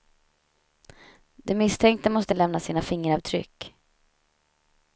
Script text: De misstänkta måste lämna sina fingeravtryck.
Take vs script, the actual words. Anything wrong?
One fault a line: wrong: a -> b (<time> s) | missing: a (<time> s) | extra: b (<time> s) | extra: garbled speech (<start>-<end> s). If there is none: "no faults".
no faults